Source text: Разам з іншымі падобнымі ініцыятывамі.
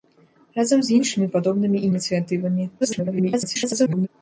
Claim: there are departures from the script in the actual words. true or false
true